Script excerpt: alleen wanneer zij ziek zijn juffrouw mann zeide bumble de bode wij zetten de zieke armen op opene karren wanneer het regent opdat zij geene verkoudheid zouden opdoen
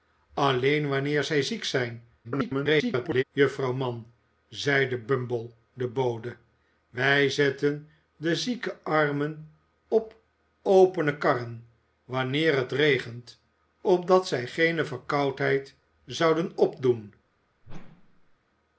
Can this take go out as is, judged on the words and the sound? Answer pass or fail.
fail